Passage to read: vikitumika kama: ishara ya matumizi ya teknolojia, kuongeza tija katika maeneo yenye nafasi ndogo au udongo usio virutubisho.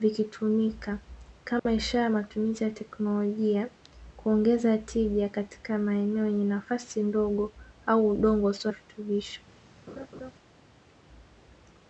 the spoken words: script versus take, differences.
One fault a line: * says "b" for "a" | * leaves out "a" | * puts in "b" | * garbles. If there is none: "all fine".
all fine